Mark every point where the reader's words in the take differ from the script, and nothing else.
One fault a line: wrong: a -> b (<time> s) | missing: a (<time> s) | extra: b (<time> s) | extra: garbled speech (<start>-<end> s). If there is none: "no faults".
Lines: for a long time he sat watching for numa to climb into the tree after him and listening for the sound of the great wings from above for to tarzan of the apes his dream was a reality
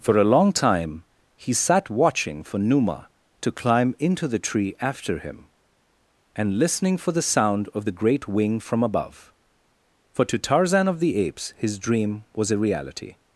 wrong: wings -> wing (8.3 s)